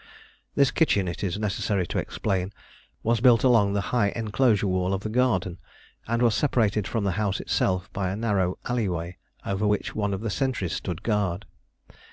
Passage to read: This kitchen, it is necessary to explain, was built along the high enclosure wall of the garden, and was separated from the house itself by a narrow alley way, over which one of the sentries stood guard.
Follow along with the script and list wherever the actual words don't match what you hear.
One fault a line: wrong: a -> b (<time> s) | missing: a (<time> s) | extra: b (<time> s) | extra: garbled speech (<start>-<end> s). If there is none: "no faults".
no faults